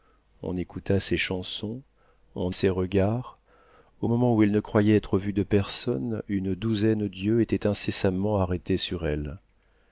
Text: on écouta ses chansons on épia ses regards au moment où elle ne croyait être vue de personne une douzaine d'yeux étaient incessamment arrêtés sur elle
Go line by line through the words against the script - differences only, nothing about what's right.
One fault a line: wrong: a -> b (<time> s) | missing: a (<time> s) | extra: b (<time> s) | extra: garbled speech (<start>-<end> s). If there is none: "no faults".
missing: épia (2.5 s)